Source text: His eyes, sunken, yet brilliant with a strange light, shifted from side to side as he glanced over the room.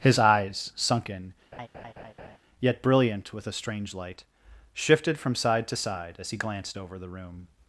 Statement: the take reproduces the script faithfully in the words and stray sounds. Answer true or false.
false